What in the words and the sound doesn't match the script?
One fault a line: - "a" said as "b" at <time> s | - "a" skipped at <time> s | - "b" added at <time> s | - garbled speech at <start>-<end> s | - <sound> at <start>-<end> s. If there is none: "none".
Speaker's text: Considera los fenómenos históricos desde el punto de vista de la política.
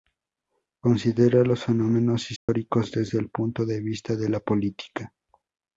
- dropout at 2.4-2.5 s